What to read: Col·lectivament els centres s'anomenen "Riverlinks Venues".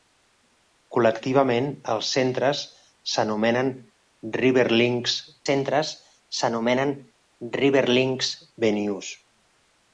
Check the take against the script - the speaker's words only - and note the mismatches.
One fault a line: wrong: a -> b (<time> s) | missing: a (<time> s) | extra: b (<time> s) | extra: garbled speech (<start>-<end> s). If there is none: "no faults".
extra: centres s'anomenen Riverlinks (5.5 s)